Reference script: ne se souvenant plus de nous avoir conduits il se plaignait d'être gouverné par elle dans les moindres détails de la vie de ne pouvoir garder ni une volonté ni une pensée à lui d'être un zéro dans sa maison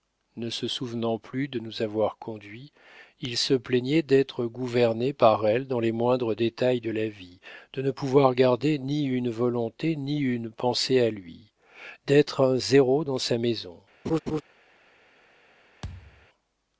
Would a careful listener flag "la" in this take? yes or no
no